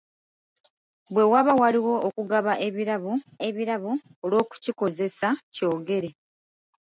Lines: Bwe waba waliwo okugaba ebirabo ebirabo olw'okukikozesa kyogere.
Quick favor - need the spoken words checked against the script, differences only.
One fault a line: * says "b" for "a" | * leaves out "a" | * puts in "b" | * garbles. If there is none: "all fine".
all fine